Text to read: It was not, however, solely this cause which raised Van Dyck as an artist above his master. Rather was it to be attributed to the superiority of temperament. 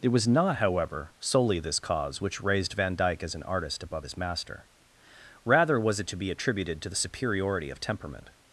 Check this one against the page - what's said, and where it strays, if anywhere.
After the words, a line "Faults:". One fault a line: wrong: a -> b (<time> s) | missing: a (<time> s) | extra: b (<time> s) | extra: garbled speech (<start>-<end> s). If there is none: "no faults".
It was not, however, solely this cause which raised Van Dyck as an artist above his master. Rather was it to be attributed to the superiority of temperament.
Faults:
no faults